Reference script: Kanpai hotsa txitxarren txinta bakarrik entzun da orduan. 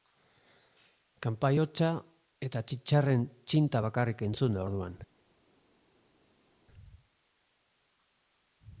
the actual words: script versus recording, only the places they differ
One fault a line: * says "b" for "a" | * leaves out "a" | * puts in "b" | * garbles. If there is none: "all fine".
* puts in "eta"